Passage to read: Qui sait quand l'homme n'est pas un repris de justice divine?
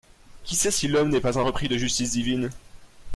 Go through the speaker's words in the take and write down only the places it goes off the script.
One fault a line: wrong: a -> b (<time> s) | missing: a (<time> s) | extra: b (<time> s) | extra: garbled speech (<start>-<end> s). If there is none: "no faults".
wrong: quand -> si (0.7 s)